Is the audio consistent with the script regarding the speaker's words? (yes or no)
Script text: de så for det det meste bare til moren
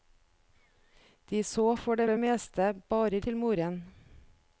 yes